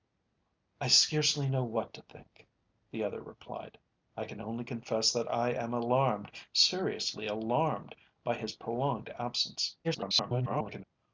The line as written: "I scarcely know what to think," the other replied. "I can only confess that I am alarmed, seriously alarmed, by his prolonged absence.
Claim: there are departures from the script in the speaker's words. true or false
true